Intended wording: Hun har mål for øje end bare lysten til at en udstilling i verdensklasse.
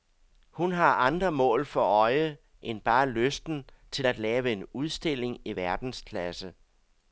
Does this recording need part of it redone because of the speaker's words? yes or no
yes